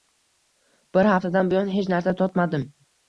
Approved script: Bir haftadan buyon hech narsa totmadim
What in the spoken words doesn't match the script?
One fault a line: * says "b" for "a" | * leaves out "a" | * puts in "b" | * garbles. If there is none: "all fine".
all fine